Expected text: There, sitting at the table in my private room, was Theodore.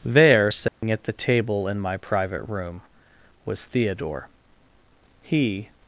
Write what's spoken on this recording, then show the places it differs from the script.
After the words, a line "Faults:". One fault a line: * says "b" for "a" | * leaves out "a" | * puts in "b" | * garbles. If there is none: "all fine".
There, sitting at the table in my private room, was Theodore. He
Faults:
* puts in "He"